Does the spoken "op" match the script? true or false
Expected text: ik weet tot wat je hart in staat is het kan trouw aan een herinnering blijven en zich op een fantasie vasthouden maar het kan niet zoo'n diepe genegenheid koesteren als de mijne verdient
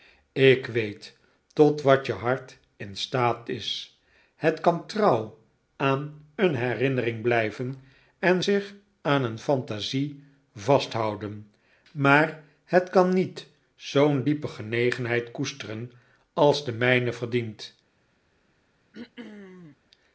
false